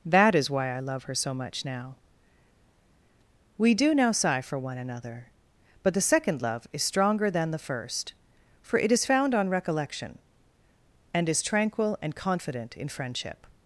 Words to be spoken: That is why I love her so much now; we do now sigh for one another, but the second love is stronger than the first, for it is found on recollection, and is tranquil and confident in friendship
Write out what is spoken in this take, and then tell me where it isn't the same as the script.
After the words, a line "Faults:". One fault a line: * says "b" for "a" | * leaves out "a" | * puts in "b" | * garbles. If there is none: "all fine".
That is why I love her so much now; we do now sigh for one another, but the second love is stronger than the first, for it is found on recollection, and is tranquil and confident in friendship
Faults:
all fine